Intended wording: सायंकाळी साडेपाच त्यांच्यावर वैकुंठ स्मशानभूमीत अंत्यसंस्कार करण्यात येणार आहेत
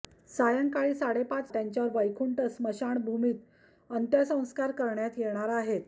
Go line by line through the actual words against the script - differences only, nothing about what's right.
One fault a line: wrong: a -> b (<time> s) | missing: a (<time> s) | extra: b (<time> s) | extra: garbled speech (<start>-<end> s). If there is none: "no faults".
no faults